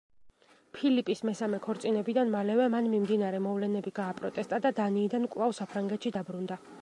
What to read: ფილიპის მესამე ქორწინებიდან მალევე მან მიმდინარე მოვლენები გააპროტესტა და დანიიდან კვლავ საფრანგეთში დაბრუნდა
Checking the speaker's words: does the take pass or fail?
pass